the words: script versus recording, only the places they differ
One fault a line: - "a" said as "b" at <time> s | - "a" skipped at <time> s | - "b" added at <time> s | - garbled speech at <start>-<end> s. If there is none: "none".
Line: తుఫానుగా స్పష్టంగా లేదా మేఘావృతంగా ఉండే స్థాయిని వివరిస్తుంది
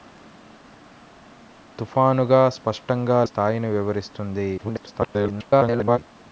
- "లేదా మేఘావృతంగా ఉండే" skipped at 3.2 s
- garbled speech at 4.6-6.0 s